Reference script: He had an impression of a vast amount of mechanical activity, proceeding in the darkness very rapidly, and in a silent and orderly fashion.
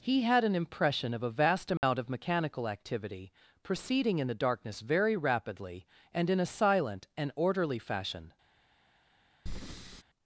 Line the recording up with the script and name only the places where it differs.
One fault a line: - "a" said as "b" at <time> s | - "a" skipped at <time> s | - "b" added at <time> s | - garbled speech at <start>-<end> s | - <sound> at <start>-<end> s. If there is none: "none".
- dropout at 1.8-1.8 s
- breath at 9.5-10.0 s